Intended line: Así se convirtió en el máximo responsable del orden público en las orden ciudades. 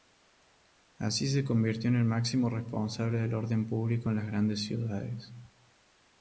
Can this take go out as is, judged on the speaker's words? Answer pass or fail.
fail